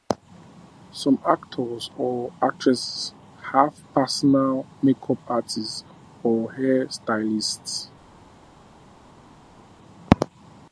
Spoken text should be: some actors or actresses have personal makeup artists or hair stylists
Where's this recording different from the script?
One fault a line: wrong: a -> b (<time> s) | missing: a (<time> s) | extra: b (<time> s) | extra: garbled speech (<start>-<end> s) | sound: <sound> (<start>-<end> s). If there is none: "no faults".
no faults